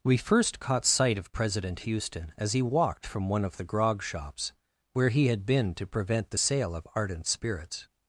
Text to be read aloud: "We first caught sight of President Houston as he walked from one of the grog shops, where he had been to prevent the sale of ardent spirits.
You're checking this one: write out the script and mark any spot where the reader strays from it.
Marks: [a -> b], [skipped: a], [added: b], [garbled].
"We first caught sight of President Houston as he walked from one of the grog shops, where he had been to prevent the sale of ardent spirits.